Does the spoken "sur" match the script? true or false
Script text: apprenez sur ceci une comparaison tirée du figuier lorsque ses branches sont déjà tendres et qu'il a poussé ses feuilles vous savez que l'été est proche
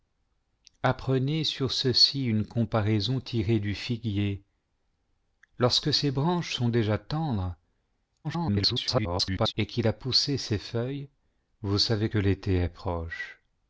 true